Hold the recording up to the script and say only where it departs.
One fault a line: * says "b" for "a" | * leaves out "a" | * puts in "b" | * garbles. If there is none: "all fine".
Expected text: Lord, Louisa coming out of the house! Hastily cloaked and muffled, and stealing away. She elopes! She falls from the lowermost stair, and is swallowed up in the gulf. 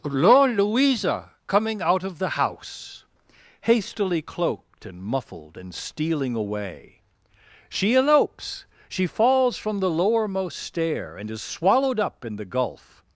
all fine